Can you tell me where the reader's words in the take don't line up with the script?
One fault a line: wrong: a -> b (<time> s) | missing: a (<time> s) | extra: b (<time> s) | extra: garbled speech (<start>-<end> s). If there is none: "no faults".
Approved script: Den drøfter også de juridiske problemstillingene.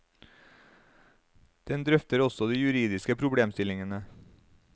no faults